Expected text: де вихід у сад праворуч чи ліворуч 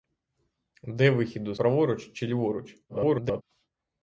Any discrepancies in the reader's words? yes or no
yes